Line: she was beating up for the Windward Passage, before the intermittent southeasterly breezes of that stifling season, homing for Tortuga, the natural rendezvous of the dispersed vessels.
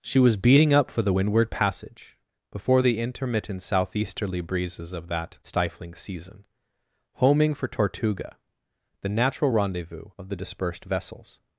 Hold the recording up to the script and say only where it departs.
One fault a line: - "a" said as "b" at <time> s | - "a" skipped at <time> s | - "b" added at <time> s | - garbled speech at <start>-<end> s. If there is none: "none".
none